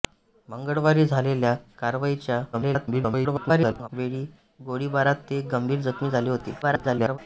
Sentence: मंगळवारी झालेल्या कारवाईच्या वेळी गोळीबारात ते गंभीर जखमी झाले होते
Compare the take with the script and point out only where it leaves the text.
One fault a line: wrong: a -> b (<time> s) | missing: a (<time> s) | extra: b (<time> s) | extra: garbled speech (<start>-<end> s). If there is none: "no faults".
extra: garbled speech (2.5-3.9 s)
extra: garbled speech (6.6-7.2 s)